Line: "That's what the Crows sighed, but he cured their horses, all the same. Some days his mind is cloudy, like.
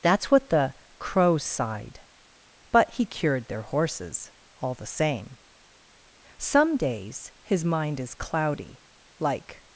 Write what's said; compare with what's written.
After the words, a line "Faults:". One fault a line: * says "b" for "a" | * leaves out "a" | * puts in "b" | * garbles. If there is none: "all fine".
"That's what the Crows sighed, but he cured their horses, all the same. Some days his mind is cloudy, like.
Faults:
all fine